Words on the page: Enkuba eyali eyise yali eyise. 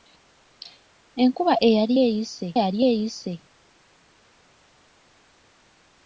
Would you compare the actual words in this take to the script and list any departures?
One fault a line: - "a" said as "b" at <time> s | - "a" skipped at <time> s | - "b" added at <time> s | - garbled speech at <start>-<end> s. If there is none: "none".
none